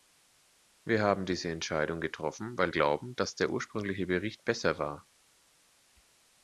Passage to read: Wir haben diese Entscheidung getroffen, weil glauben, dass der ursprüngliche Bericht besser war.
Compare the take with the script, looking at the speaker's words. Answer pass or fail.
pass